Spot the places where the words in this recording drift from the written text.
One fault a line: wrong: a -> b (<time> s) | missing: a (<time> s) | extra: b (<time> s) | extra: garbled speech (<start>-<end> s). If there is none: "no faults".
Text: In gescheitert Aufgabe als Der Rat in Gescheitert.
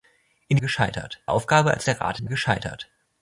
no faults